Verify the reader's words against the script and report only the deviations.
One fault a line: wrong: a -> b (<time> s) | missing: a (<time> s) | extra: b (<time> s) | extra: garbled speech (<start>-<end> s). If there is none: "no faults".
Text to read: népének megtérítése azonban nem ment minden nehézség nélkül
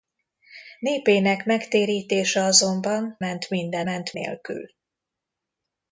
missing: nem (3.2 s)
wrong: nehézség -> ment (3.8 s)